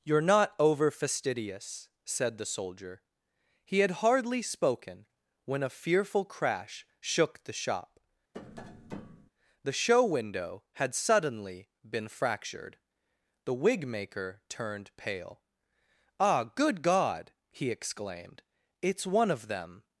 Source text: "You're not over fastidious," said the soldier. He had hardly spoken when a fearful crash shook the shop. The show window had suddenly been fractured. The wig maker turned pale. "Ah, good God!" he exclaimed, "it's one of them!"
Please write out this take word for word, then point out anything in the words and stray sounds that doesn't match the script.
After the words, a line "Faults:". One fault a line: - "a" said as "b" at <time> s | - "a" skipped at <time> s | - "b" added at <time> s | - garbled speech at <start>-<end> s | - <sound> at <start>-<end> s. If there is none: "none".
"You're not over fastidious," said the soldier. He had hardly spoken when a fearful crash shook the shop. The show window had suddenly been fractured. The wig maker turned pale. "Ah, good God!" he exclaimed, "it's one of them!"
Faults:
- tap at 8.3-9.3 s